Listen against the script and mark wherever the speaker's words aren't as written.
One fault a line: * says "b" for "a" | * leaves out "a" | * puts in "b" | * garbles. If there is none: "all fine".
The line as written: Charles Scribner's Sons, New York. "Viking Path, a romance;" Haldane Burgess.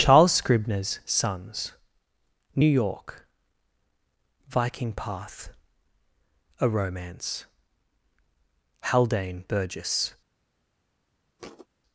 all fine